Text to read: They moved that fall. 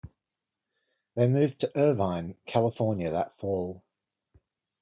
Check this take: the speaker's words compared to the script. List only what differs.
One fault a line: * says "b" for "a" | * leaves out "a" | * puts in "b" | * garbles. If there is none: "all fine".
* puts in "to Irvine California"